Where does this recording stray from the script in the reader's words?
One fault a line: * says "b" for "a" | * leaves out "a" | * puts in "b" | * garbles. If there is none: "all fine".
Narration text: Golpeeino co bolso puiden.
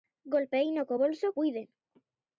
all fine